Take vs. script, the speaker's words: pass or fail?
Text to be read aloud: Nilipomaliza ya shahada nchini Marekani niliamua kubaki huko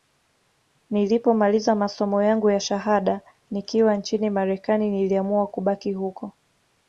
fail